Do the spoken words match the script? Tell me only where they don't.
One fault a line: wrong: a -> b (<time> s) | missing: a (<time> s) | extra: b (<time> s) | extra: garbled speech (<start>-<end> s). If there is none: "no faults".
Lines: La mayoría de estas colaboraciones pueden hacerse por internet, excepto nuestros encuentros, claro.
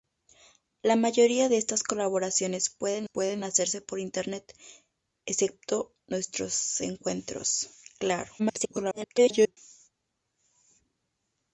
extra: pueden (3.0 s)
extra: garbled speech (8.4-9.6 s)